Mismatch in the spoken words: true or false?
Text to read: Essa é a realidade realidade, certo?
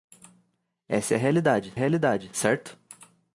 false